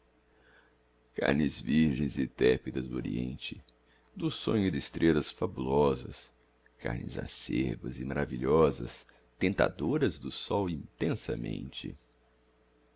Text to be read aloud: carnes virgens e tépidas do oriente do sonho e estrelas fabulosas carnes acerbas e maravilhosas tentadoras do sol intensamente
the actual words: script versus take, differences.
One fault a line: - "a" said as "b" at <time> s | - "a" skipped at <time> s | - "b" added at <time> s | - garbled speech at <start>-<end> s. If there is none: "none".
none